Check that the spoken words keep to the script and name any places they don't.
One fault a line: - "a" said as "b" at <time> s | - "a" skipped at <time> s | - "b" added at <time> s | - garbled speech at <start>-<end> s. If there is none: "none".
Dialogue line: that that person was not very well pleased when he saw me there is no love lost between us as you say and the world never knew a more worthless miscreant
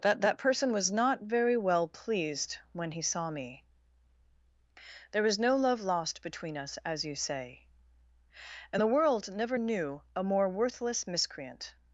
- "is" said as "was" at 5.2 s